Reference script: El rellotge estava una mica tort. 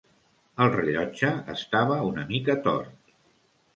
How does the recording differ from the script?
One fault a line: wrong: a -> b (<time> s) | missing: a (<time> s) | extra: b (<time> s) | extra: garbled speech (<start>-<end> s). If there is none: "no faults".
no faults